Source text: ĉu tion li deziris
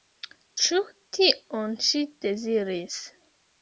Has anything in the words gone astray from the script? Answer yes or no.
yes